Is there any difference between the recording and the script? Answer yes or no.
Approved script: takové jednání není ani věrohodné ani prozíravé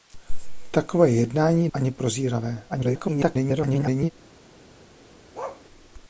yes